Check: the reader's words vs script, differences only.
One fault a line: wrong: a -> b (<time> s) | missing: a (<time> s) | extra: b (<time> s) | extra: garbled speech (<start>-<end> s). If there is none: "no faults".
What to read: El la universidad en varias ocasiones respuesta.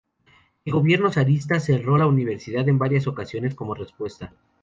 extra: gobierno zarista cerró (0.7 s)
extra: como (3.5 s)